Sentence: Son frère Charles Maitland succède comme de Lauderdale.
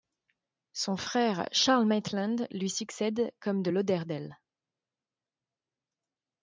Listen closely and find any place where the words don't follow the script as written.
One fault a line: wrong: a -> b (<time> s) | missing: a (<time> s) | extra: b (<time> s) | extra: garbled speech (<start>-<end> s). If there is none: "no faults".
extra: lui (2.5 s)